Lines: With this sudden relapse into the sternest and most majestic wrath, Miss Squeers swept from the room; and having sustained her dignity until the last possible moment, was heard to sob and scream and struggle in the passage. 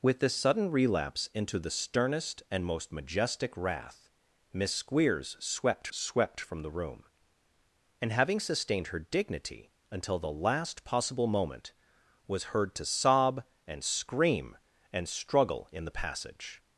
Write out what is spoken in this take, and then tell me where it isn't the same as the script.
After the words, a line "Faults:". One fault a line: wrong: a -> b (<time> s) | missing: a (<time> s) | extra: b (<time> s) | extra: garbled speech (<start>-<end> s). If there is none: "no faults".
With this sudden relapse into the sternest and most majestic wrath, Miss Squeers swept swept from the room; and having sustained her dignity until the last possible moment, was heard to sob and scream and struggle in the passage.
Faults:
extra: swept (5.9 s)